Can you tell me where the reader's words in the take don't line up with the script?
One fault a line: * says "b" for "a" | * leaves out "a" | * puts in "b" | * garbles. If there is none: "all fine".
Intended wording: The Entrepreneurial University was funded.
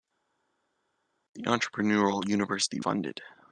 * leaves out "was"